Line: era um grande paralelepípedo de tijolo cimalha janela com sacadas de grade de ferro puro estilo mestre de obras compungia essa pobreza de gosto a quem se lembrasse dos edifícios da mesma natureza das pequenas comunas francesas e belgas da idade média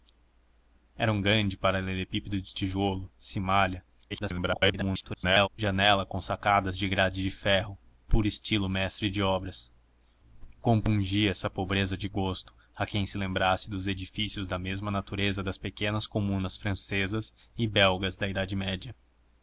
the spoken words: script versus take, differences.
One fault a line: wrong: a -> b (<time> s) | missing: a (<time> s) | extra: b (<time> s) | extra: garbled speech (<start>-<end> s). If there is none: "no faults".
extra: garbled speech (4.1-5.5 s)